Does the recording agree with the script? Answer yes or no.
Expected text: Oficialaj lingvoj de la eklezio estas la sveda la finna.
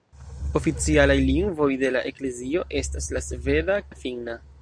yes